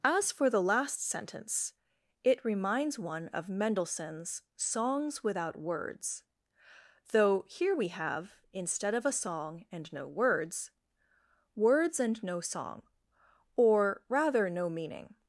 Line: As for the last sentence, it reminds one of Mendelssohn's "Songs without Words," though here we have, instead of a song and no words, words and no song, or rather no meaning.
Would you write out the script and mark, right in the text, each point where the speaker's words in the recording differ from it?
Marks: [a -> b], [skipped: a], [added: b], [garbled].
As for the last sentence, it reminds one of Mendelssohn's "Songs without Words," though here we have, instead of a song and no words, words and no song, or rather no meaning.